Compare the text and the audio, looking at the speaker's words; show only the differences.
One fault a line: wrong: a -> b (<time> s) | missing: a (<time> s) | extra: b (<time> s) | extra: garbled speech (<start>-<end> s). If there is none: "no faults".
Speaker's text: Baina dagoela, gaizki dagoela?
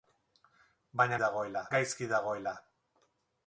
no faults